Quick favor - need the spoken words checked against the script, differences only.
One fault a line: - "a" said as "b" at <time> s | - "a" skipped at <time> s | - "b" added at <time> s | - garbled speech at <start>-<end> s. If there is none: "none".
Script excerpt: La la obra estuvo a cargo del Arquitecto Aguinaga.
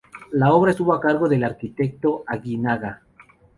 - "la" skipped at 0.5 s